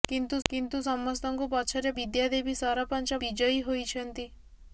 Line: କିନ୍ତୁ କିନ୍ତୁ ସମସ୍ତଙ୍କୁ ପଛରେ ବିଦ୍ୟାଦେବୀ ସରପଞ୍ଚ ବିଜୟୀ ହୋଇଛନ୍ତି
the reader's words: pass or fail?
pass